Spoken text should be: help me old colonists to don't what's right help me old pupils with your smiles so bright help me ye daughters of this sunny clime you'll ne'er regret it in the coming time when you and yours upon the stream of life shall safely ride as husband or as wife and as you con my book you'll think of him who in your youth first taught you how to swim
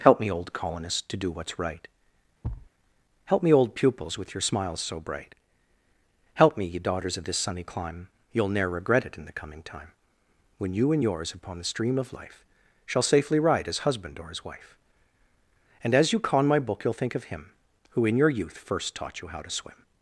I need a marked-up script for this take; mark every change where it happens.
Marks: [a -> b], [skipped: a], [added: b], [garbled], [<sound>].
help me old colonists to [don't -> do] what's right [thud] help me old pupils with your smiles so bright help me ye daughters of this sunny clime you'll ne'er regret it in the coming time when you and yours upon the stream of life shall safely ride as husband or as wife and as you con my book you'll think of him who in your youth first taught you how to swim